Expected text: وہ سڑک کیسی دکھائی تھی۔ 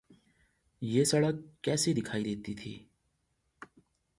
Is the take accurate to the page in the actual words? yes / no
no